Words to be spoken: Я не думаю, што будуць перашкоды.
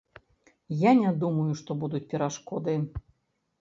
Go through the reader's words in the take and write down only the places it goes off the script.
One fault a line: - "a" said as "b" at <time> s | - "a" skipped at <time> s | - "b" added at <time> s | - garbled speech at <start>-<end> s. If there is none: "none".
none